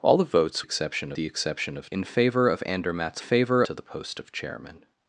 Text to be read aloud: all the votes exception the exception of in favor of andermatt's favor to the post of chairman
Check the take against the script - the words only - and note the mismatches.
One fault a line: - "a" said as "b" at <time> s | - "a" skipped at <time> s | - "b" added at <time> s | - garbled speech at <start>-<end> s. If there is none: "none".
none